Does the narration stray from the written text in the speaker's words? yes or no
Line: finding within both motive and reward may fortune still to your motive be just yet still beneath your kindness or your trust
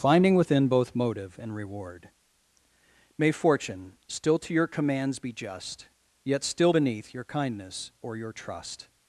yes